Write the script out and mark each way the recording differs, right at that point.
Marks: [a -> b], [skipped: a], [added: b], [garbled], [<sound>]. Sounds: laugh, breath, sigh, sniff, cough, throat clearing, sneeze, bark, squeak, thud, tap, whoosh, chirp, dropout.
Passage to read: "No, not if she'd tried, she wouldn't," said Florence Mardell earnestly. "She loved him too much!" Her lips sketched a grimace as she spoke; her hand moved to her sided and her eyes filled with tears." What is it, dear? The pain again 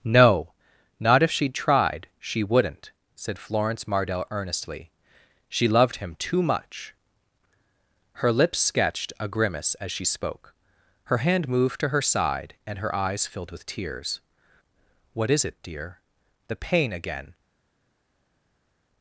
"No, not if she'd tried, she wouldn't," said Florence Mardell earnestly. "She loved him too much!" Her lips sketched a grimace as she spoke; her hand moved to her [sided -> side] and her eyes filled with tears." What is it, dear? The pain again